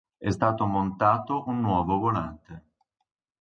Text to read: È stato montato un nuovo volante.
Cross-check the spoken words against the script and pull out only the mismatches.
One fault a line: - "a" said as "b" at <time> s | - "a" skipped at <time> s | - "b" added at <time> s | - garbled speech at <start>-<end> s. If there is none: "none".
none